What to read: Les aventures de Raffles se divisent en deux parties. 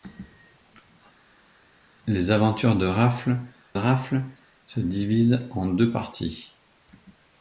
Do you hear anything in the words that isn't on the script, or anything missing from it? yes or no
yes